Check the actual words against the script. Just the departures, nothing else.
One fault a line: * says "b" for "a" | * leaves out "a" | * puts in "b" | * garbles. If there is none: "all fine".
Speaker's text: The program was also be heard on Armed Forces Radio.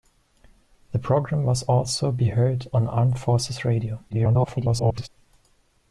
* garbles